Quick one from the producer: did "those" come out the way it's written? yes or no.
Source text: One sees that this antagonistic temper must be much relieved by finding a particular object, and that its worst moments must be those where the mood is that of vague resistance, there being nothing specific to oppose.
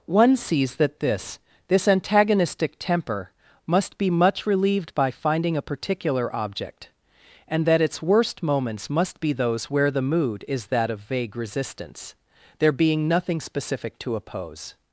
yes